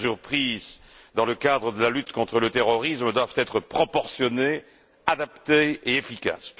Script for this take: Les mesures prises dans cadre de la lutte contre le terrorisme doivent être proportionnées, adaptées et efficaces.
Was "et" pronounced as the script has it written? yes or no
yes